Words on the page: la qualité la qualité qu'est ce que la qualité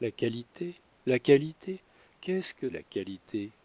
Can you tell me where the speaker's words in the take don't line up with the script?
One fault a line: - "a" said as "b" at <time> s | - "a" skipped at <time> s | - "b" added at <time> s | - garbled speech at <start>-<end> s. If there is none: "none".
none